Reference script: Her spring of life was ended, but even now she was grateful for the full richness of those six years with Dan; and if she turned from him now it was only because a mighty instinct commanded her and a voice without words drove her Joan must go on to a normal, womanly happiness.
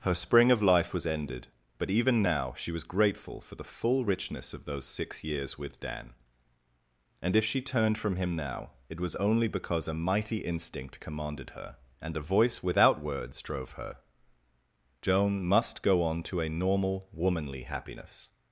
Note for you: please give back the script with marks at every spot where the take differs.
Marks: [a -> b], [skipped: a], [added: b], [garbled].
Her spring of life was ended, but even now she was grateful for the full richness of those six years with Dan; and if she turned from him now it was only because a mighty instinct commanded her and a voice without words drove her Joan must go on to a normal, womanly happiness.